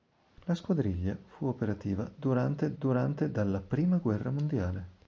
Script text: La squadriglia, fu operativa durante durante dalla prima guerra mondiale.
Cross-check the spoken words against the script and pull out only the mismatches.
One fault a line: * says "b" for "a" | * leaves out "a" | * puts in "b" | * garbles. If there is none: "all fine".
all fine